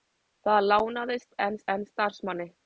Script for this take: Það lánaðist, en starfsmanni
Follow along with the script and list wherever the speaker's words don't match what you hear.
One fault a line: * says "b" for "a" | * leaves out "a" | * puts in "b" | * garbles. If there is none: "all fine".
* puts in "en"